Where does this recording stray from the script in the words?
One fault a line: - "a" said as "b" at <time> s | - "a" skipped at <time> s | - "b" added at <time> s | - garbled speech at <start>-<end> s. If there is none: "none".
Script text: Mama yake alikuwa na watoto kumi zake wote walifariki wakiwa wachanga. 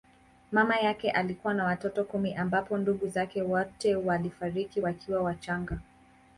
- "ambapo ndugu" added at 2.4 s